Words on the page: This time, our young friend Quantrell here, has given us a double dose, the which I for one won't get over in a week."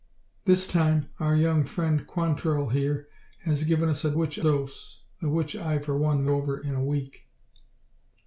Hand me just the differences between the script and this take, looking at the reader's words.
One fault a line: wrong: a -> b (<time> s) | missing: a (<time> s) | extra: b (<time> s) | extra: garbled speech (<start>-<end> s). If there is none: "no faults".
wrong: double -> which (4.1 s)
missing: won't get (6.3 s)